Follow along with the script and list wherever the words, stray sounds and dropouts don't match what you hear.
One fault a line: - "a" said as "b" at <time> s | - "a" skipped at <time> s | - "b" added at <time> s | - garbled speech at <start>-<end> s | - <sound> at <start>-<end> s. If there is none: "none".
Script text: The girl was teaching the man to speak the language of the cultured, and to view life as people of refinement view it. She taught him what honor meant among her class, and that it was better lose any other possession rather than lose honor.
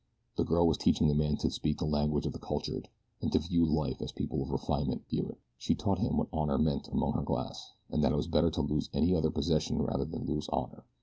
- "to" added at 8.5 s